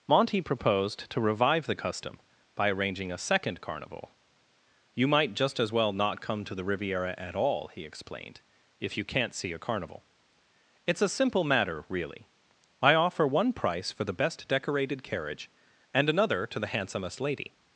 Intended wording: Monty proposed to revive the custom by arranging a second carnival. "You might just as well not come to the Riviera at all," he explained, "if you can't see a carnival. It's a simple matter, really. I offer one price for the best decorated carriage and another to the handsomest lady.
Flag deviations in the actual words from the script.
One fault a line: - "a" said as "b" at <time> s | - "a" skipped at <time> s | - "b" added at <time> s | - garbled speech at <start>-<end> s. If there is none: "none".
none